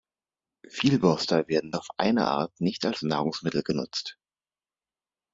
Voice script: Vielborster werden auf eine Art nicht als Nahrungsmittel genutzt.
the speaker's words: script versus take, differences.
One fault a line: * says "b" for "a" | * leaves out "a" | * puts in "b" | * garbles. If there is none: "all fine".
all fine